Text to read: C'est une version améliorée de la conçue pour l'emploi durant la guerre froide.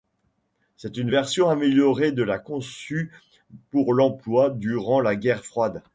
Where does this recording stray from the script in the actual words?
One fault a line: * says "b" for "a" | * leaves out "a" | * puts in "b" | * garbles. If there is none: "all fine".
all fine